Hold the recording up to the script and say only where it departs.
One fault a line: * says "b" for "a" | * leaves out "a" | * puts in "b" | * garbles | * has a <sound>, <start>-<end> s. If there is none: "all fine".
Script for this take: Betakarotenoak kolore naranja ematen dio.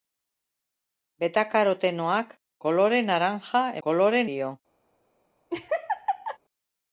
* says "kolore" for "ematen"
* has a laugh, 5.5-6.4 s